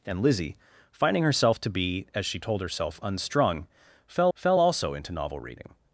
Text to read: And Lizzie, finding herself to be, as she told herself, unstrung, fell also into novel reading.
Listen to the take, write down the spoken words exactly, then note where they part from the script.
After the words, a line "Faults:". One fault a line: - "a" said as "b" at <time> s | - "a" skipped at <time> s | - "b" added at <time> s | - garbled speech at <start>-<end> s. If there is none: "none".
And Lizzie, finding herself to be, as she told herself, unstrung, fell fell also into novel reading.
Faults:
- "fell" added at 4.3 s